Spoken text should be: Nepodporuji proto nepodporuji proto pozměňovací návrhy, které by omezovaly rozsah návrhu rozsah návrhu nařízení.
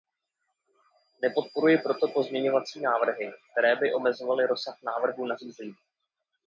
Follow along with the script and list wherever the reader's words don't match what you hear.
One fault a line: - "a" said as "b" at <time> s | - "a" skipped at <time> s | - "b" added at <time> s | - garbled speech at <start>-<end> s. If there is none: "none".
- "nepodporuji proto" skipped at 2.1 s
- "rozsah návrhu" skipped at 5.2 s